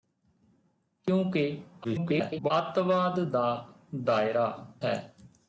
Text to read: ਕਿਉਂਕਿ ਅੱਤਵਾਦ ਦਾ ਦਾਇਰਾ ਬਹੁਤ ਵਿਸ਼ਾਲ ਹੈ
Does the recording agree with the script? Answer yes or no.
no